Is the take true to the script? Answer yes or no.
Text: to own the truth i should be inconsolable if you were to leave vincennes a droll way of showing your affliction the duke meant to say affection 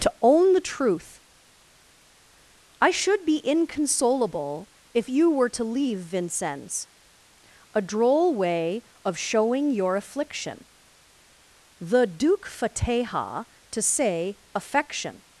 no